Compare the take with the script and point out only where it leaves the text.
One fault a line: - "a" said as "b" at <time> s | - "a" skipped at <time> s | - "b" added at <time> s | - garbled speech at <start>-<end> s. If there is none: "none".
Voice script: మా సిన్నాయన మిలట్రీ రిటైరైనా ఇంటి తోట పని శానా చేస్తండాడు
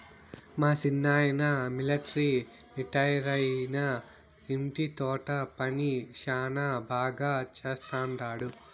- "బాగా" added at 6.9 s